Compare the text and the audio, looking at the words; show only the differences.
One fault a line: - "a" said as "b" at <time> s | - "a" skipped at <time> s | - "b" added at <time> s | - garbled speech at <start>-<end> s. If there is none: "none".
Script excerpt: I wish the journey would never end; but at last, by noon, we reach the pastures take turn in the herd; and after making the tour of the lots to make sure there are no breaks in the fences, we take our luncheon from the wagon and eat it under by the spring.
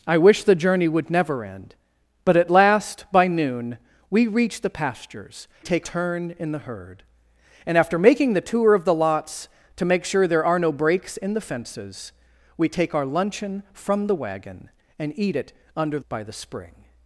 none